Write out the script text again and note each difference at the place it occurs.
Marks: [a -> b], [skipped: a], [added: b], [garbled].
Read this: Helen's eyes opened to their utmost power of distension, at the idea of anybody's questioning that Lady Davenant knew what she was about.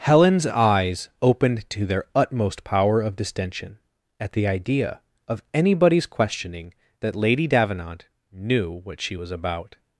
Helen's eyes opened to their utmost power of distension, at the idea of anybody's questioning that Lady Davenant knew what she was about.